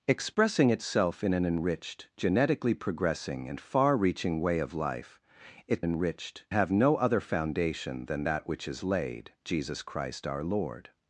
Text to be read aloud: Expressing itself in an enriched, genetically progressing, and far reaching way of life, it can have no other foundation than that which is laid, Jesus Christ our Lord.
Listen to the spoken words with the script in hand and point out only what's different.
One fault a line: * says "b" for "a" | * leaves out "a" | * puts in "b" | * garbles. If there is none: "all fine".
* says "enriched" for "can"